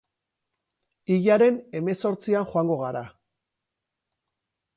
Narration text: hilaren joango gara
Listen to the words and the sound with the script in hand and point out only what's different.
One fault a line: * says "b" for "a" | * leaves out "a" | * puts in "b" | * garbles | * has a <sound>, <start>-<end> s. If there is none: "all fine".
* puts in "hemezortzian"